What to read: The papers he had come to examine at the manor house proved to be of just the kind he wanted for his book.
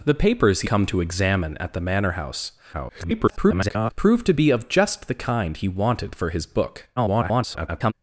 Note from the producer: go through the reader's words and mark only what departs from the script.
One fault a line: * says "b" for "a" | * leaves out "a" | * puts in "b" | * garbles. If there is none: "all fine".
* leaves out "had"
* garbles
* garbles